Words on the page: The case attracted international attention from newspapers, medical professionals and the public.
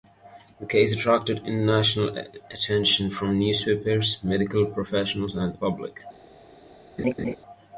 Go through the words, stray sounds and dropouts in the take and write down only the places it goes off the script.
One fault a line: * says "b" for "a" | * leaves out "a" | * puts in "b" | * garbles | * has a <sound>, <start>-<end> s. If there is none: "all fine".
* has a laugh, 7.0-7.4 s